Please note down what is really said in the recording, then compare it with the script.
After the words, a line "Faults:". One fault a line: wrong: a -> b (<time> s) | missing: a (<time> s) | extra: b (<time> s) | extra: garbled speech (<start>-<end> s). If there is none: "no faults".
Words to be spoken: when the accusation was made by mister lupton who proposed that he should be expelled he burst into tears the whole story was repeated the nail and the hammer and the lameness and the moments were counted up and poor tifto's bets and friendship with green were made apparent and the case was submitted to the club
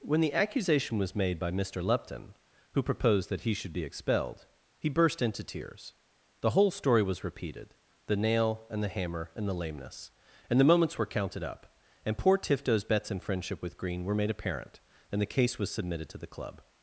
when the accusation was made by mister lupton who proposed that he should be expelled he burst into tears the whole story was repeated the nail and the hammer and the lameness and the moments were counted up and poor tifto's bets and friendship with green were made apparent and the case was submitted to the club
Faults:
no faults